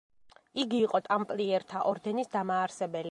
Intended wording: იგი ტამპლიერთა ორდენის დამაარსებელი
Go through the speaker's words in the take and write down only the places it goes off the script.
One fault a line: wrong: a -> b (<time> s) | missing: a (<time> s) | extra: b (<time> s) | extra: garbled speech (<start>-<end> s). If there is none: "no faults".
extra: იყო (0.8 s)